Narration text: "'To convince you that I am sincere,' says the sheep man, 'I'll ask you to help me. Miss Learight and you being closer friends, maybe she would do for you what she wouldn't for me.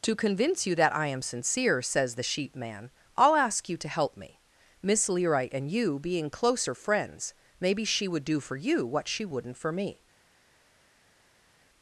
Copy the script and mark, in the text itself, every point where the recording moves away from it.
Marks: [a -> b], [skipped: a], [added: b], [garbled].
"'To convince you that I am sincere,' says the sheep man, 'I'll ask you to help me. Miss Learight and you being closer friends, maybe she would do for you what she wouldn't for me.